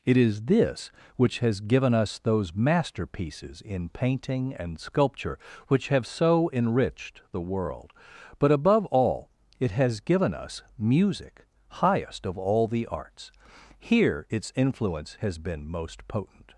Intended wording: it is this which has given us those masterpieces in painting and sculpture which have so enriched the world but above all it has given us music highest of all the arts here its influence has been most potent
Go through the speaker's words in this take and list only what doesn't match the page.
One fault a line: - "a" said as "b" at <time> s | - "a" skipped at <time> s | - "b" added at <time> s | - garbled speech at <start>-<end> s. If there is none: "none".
none